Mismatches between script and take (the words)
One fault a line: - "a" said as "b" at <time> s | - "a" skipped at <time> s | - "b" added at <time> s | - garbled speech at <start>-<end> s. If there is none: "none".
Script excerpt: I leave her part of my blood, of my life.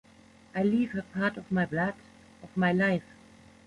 none